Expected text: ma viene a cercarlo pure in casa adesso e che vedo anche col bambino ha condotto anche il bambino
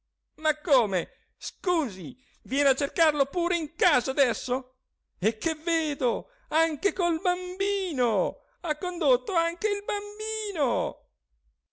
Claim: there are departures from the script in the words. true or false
true